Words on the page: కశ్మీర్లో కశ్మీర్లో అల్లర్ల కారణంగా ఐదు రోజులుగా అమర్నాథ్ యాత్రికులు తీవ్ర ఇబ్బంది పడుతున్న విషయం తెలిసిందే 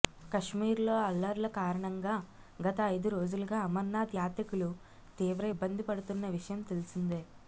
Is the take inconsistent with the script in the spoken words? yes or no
yes